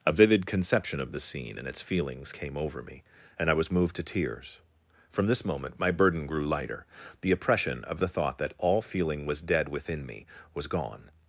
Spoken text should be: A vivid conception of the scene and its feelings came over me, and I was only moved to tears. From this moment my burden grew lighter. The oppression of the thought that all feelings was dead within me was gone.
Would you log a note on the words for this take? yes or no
yes